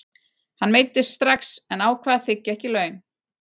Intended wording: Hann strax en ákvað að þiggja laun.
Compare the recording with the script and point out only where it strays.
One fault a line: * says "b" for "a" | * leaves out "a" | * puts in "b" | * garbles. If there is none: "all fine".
* puts in "meiddist"
* puts in "ekki"